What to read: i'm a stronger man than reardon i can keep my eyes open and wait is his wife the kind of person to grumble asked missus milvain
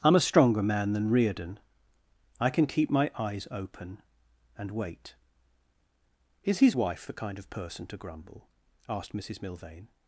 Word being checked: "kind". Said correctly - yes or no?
yes